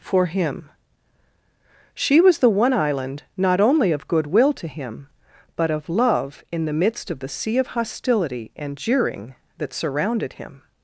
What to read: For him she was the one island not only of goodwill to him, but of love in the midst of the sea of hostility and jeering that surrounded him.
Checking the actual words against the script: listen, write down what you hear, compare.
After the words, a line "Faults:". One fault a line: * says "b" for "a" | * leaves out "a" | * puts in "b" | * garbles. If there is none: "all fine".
For him she was the one island not only of goodwill to him, but of love in the midst of the sea of hostility and jeering that surrounded him.
Faults:
all fine